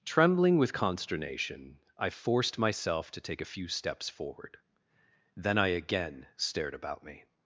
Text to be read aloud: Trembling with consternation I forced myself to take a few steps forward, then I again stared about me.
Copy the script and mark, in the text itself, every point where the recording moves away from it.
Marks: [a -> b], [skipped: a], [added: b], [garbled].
Trembling with consternation I forced myself to take a few steps forward, then I again stared about me.